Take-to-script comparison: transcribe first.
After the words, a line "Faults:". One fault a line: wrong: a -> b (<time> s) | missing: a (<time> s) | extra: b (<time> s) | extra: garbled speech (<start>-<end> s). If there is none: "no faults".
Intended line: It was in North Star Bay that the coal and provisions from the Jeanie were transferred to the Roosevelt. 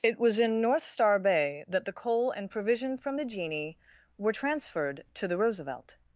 It was in North Star Bay that the coal and provision from the Jeanie were transferred to the Roosevelt.
Faults:
wrong: provisions -> provision (2.5 s)